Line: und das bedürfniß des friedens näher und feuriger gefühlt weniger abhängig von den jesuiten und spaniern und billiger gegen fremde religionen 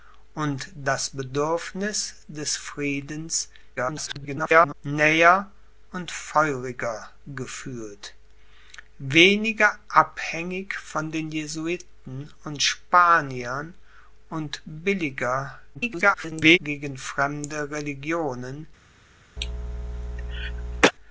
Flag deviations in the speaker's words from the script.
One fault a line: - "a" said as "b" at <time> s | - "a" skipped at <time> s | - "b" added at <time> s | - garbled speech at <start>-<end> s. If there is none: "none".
- garbled speech at 3.8-4.7 s
- garbled speech at 15.7-16.6 s